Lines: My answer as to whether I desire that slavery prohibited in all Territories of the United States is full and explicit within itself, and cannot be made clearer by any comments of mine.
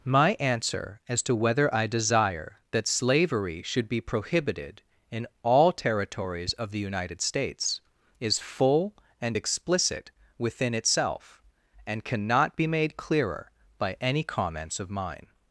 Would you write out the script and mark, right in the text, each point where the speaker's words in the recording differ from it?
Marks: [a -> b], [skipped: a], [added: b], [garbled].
My answer as to whether I desire that slavery [added: should be] prohibited in all Territories of the United States is full and explicit within itself, and cannot be made clearer by any comments of mine.